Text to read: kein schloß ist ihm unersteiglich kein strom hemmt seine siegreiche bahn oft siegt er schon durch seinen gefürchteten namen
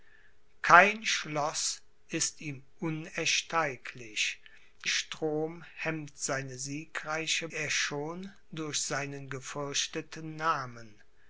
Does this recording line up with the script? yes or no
no